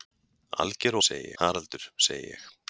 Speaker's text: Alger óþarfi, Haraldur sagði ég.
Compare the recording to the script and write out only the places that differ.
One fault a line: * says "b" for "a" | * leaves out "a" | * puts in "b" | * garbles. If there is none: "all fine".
* says "sagði" for "óþarfi"